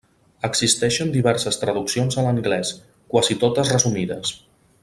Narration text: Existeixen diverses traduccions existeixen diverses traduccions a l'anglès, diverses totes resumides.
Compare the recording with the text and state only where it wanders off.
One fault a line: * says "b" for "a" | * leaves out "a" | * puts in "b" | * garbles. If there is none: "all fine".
* leaves out "existeixen diverses traduccions"
* says "quasi" for "diverses"